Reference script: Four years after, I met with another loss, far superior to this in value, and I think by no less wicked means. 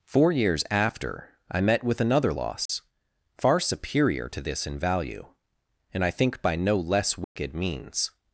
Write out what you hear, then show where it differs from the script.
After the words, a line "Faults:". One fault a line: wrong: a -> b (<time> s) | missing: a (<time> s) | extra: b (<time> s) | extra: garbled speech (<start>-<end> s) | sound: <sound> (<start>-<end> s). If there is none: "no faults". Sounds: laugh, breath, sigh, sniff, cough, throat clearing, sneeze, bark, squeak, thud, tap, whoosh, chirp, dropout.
Four years after, I met with another loss, far superior to this in value, and I think by no less wicked means.
Faults:
sound: dropout (2.7-2.7 s)
sound: dropout (7.2-7.4 s)